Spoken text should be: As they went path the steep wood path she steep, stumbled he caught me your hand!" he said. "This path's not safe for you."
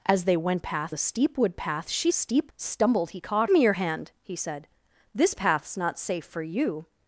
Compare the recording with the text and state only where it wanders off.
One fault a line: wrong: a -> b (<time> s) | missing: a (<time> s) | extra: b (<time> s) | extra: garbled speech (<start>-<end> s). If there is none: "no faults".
no faults